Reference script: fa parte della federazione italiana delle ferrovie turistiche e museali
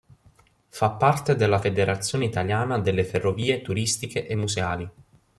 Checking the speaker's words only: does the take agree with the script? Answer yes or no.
yes